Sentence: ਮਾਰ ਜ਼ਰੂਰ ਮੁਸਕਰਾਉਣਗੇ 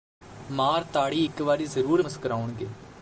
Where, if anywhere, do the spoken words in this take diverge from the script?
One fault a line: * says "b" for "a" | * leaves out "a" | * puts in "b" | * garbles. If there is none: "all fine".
* puts in "ਤਾੜੀ ਇਕ ਵਾਰੀ"